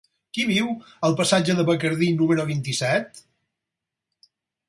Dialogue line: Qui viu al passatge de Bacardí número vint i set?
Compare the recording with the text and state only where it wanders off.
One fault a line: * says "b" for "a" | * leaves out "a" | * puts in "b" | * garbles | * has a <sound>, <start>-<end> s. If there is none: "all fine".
all fine